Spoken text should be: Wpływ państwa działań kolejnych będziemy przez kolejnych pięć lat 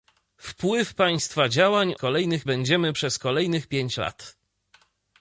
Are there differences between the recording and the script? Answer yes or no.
no